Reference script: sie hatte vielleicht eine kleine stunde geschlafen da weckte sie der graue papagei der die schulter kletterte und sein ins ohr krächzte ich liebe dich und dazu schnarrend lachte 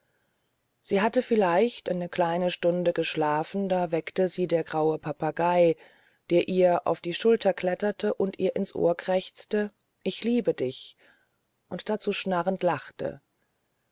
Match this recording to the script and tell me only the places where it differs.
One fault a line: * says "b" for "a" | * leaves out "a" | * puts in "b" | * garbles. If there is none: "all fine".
* puts in "ihr auf"
* says "ihr" for "sein"